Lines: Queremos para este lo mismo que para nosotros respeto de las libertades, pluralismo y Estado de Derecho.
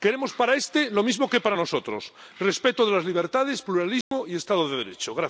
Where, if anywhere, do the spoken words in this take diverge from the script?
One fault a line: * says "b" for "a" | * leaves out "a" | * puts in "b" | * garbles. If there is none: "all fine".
all fine